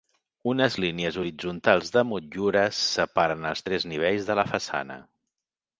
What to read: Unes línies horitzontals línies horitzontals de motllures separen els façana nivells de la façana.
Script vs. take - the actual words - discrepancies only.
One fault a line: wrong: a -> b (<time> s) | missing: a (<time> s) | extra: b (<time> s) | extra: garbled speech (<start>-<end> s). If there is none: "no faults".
missing: línies horitzontals (1.9 s)
wrong: façana -> tres (3.7 s)